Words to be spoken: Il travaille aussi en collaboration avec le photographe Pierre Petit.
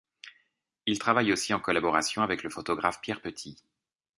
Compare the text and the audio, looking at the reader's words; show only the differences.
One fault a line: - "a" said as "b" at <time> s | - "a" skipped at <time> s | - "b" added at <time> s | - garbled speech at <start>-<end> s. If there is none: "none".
none